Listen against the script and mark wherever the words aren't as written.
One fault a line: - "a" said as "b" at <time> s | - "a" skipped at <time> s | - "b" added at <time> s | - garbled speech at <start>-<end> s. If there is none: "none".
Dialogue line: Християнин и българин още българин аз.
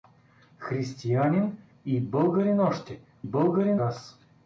none